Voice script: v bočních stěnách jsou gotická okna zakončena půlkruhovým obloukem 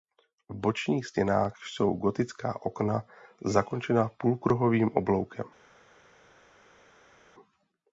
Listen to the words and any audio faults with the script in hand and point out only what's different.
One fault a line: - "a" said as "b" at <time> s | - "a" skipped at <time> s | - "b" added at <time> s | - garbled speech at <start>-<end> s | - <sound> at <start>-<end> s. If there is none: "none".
none